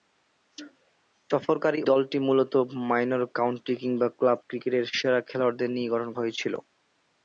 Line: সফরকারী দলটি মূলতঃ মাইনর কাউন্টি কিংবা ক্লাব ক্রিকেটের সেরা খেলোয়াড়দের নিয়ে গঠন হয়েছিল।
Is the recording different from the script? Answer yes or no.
no